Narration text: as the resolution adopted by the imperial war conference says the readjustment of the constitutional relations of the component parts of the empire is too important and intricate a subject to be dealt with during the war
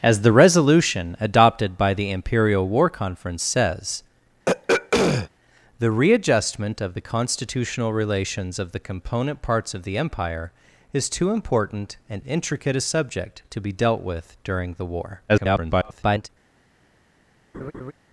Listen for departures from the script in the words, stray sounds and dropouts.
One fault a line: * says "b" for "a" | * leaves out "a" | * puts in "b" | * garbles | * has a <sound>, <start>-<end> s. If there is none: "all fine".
* has a throat clearing, 4.5-5.3 s
* garbles
* has a laugh, 17.5-17.9 s